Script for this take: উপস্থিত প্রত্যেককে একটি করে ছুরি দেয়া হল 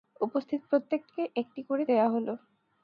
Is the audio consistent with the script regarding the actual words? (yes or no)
no